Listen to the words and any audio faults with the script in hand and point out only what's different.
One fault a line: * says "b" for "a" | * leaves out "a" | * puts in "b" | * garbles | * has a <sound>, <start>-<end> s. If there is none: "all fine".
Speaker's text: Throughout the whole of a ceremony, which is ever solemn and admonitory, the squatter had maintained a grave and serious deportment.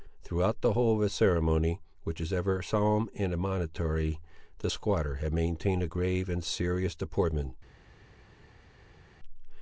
all fine